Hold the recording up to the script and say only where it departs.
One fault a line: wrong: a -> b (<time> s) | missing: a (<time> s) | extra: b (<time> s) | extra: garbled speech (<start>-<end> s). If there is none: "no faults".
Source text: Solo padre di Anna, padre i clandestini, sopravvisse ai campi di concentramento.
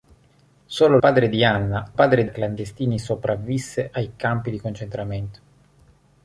no faults